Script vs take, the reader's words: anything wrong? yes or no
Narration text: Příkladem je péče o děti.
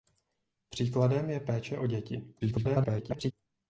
yes